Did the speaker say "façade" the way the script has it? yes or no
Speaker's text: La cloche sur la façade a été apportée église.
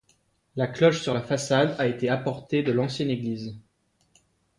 yes